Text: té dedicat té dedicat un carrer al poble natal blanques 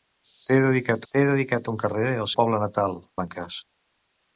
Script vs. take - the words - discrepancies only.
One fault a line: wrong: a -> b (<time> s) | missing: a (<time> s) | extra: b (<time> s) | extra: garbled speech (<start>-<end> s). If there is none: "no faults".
no faults